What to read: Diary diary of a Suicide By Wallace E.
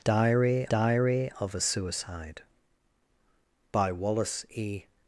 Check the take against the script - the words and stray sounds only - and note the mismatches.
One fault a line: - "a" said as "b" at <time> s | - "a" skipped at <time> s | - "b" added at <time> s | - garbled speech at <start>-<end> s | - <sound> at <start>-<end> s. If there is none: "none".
none